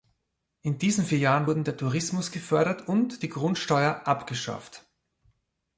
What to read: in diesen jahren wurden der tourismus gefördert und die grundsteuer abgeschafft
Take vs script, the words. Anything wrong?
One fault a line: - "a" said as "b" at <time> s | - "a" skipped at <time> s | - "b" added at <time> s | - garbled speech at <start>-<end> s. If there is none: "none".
- "vier" added at 1.1 s